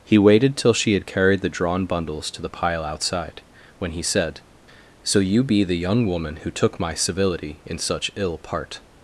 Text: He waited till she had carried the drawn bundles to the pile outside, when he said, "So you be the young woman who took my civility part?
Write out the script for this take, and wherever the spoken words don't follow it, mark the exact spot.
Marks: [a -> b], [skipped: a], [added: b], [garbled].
He waited till she had carried the drawn bundles to the pile outside, when he said, "So you be the young woman who took my civility [added: in such ill] part?